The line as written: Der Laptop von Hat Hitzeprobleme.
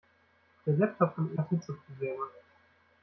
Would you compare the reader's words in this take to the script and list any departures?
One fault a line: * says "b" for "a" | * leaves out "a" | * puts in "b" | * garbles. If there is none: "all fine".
all fine